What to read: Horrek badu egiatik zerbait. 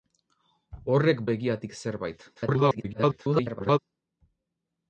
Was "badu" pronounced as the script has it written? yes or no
no